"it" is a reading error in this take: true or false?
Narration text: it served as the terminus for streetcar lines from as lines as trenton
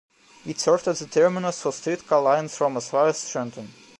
false